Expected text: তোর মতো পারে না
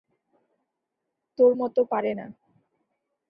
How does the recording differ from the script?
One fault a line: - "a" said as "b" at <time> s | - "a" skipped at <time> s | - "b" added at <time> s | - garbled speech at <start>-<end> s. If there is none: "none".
none